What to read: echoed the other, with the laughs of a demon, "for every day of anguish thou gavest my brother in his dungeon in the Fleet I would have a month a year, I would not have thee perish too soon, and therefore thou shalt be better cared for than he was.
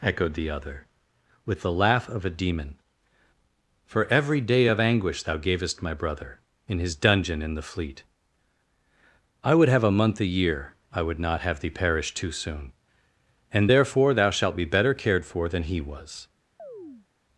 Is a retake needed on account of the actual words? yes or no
yes